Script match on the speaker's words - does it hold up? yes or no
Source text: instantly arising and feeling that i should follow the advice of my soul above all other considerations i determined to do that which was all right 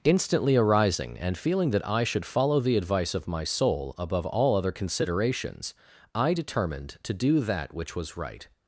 no